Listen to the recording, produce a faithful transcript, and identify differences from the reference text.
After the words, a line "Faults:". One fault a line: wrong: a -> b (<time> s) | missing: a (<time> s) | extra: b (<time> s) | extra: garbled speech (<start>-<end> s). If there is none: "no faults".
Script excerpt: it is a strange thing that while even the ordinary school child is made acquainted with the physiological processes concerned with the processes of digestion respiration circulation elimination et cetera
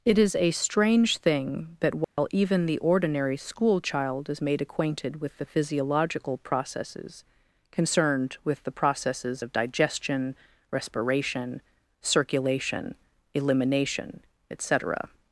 it is a strange thing that while even the ordinary school child is made acquainted with the physiological processes concerned with the processes of digestion respiration circulation elimination et cetera
Faults:
no faults